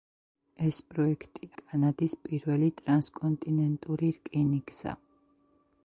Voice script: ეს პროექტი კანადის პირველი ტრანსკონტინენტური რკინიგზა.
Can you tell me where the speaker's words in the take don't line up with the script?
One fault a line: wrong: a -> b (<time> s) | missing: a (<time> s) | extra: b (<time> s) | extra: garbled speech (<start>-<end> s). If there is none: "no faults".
no faults